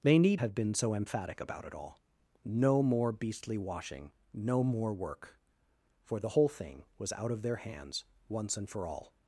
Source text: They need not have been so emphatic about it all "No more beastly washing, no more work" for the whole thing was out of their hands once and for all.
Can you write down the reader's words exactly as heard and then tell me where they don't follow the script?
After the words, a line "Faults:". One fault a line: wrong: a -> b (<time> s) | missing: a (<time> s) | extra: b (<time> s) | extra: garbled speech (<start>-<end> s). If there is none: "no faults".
They need have been so emphatic about it all "No more beastly washing, no more work" for the whole thing was out of their hands once and for all.
Faults:
missing: not (0.4 s)